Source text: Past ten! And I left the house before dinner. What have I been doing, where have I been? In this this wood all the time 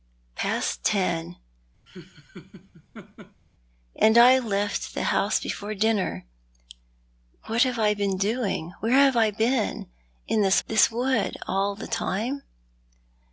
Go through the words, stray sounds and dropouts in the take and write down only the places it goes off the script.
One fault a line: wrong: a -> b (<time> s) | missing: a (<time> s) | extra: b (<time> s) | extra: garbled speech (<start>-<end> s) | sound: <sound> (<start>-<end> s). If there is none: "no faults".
sound: laugh (1.9-3.4 s)